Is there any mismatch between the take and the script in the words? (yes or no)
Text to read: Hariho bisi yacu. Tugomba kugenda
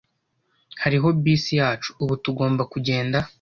yes